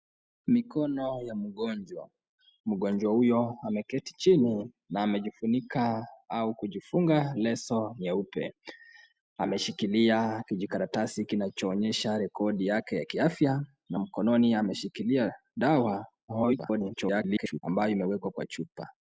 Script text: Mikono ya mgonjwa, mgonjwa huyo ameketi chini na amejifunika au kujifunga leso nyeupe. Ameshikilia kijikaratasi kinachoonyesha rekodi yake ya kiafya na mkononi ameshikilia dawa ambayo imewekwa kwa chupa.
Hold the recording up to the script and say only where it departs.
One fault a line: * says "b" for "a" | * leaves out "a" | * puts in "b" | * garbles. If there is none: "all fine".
* garbles